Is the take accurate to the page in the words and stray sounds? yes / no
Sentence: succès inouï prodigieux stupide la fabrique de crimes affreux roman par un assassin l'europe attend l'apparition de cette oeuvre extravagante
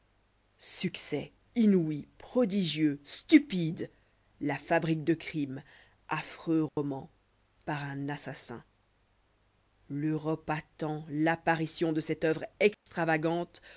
no